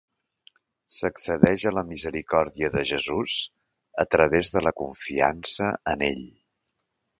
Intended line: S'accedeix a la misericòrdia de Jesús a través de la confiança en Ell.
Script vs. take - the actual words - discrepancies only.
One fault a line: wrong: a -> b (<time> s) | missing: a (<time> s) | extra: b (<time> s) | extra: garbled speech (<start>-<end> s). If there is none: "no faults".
no faults